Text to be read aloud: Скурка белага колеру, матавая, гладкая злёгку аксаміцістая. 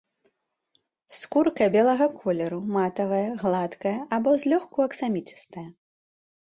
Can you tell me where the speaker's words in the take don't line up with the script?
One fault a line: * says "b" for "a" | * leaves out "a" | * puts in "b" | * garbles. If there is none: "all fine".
* puts in "або"